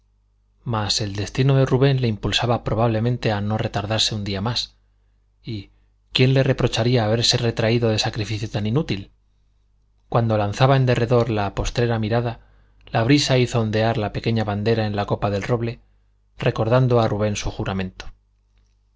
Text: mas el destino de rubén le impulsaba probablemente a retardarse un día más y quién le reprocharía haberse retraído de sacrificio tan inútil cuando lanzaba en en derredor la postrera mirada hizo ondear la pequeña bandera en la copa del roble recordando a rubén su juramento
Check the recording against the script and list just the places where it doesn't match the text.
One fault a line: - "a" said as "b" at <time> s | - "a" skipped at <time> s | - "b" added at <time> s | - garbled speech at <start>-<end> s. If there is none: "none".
- "no" added at 3.4 s
- "en" skipped at 10.9 s
- "la brisa" added at 12.9 s